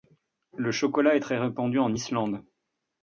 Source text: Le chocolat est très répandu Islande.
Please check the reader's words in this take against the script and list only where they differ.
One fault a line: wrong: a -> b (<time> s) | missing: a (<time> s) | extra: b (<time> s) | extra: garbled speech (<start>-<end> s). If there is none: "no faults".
extra: en (1.8 s)